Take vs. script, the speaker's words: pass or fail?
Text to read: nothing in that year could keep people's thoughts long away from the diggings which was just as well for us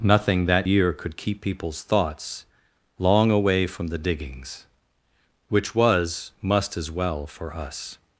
fail